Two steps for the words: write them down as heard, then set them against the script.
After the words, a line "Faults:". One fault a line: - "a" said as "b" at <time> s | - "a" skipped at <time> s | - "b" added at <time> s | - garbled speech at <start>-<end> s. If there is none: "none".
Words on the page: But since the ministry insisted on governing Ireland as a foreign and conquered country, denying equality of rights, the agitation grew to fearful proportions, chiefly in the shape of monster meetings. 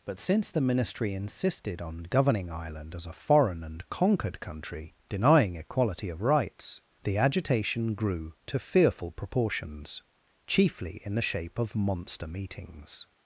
But since the ministry insisted on governing Ireland as a foreign and conquered country, denying equality of rights, the agitation grew to fearful proportions, chiefly in the shape of monster meetings.
Faults:
none